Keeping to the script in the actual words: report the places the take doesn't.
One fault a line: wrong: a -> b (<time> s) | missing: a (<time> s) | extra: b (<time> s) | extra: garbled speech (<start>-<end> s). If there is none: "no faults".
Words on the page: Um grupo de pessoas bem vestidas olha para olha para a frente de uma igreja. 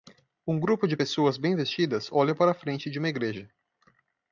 missing: olha para (2.5 s)